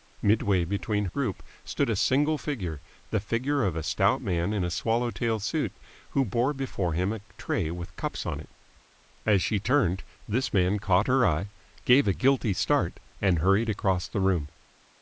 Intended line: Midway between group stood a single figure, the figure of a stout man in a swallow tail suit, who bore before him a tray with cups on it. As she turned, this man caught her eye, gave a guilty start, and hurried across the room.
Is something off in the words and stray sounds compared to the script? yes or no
no